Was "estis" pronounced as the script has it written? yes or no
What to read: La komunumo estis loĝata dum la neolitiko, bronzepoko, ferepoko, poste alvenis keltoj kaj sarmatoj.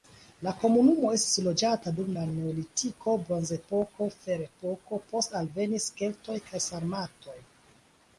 yes